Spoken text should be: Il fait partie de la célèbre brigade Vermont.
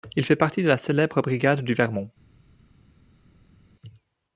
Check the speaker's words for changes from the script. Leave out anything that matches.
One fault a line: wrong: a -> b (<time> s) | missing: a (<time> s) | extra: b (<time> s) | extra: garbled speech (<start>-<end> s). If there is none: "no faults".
extra: du (1.6 s)